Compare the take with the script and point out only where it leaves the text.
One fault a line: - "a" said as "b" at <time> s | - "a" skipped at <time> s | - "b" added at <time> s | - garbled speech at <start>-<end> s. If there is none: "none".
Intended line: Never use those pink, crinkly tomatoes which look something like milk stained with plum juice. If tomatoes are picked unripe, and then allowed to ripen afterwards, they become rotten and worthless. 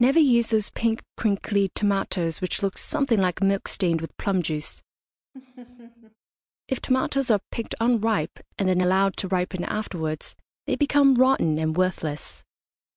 none